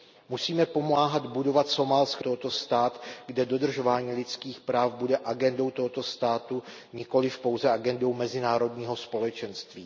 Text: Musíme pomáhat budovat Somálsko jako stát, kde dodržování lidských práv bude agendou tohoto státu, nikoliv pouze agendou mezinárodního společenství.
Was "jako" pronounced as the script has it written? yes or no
no